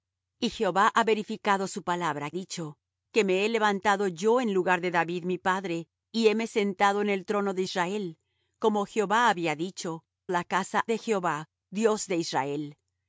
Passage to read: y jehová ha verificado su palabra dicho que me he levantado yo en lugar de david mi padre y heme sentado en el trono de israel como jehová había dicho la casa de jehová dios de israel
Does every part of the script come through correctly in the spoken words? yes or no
yes